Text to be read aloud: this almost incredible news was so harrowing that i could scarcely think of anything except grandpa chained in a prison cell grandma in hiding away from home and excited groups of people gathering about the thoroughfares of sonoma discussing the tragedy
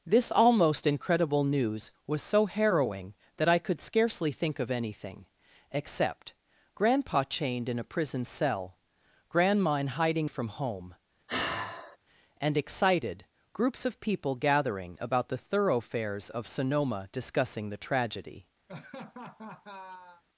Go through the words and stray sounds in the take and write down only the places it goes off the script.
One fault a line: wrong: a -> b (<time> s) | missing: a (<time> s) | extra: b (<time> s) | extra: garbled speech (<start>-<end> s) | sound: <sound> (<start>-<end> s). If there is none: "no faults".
missing: away (10.3 s)
sound: sigh (11.3-12.0 s)
sound: laugh (18.7-20.2 s)